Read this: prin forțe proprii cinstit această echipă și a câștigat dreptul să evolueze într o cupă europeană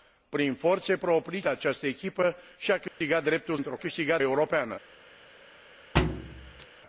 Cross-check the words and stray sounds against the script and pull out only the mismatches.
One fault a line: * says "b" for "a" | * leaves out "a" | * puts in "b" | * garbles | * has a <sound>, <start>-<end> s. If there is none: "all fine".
* leaves out "cinstit"
* has a dropout, 2.9-3.0 s
* leaves out "să evolueze"
* says "câștigat" for "cupă"
* has a thud, 5.9-6.7 s